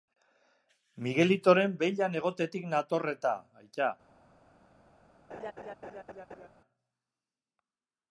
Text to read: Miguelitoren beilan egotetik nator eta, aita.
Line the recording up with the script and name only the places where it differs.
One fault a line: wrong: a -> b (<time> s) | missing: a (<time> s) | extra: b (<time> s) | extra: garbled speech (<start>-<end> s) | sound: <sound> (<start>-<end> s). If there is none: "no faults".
sound: laugh (5.3-6.5 s)